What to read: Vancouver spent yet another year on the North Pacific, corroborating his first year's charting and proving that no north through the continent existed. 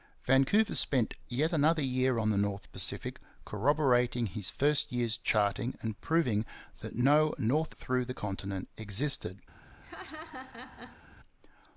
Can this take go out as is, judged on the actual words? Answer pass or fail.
pass